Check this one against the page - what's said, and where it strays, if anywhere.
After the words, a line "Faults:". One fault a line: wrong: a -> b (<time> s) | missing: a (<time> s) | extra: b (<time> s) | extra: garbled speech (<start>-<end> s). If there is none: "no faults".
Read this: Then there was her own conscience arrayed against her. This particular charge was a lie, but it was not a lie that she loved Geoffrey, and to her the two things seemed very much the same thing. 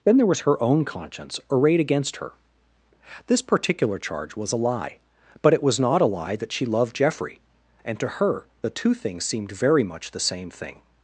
Then there was her own conscience arrayed against her. This particular charge was a lie, but it was not a lie that she loved Geoffrey, and to her the two things seemed very much the same thing.
Faults:
no faults